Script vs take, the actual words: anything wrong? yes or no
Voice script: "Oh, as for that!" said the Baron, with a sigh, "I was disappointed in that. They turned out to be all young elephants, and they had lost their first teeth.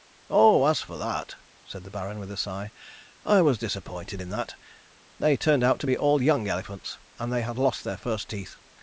no